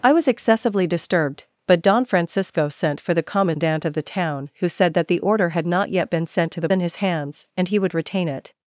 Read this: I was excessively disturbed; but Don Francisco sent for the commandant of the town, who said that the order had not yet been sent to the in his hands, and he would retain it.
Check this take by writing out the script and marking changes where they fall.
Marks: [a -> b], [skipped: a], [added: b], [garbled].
I was excessively disturbed; but Don Francisco sent for the commandant of the town, who said that the order had not yet been sent to the in his hands, and he would retain it.